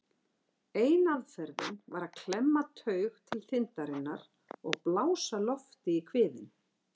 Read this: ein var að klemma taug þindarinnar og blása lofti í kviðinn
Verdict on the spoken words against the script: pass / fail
fail